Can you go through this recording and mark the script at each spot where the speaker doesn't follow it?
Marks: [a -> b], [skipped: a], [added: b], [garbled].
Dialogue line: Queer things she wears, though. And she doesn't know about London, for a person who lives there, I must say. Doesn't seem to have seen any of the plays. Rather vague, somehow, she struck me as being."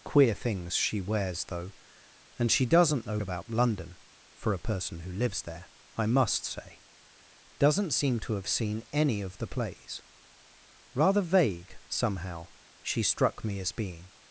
Queer things she wears, though. And she doesn't know about London, for a person who lives there, I must say. Doesn't seem to have seen any of the plays. Rather vague, somehow, she struck me as being."